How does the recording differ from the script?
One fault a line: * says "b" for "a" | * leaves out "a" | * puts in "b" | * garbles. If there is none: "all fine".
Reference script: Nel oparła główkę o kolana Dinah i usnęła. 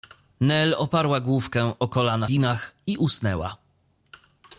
all fine